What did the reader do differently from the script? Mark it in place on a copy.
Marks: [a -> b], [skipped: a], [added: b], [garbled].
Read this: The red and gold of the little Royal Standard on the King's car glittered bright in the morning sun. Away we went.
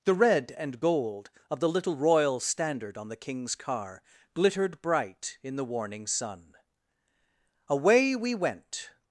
The red and gold of the little Royal Standard on the King's car glittered bright in the [morning -> warning] sun. Away we went.